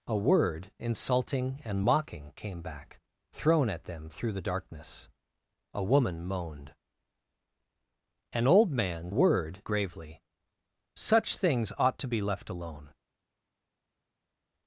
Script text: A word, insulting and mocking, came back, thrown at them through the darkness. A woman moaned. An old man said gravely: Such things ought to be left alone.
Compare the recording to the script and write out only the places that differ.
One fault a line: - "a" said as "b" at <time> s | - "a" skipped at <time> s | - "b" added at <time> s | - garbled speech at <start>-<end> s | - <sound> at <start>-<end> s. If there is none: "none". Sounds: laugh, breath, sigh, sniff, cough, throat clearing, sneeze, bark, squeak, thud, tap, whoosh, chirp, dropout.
- "said" said as "word" at 9.1 s